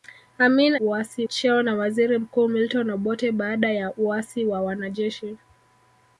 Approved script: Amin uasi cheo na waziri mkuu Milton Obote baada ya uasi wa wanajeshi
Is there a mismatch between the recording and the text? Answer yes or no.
no